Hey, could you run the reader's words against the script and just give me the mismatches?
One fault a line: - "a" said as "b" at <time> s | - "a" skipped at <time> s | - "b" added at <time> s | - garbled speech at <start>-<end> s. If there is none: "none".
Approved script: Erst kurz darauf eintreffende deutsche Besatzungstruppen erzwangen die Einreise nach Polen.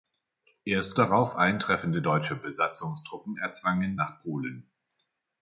- "kurz" skipped at 0.9 s
- "die Einreise" skipped at 4.0 s